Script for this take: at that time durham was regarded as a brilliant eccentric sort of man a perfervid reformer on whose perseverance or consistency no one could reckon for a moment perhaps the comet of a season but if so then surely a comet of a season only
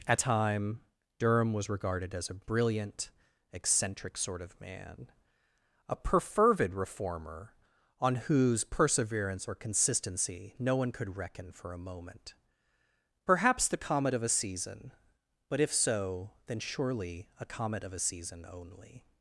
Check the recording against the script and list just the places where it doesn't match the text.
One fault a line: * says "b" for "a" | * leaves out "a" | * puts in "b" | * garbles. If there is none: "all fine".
* leaves out "that"